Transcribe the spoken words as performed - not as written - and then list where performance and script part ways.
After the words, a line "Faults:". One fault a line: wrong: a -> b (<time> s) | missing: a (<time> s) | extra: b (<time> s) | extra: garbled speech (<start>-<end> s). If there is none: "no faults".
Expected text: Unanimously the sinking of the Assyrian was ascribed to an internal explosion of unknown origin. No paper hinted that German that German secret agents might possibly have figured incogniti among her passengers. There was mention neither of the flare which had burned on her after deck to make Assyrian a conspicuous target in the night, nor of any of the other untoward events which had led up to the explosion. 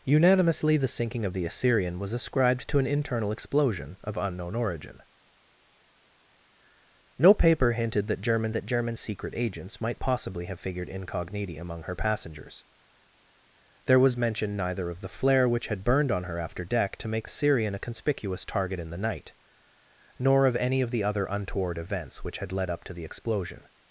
Unanimously the sinking of the Assyrian was ascribed to an internal explosion of unknown origin. No paper hinted that German that German secret agents might possibly have figured incogniti among her passengers. There was mention neither of the flare which had burned on her after deck to make Assyrian a conspicuous target in the night, nor of any of the other untoward events which had led up to the explosion.
Faults:
no faults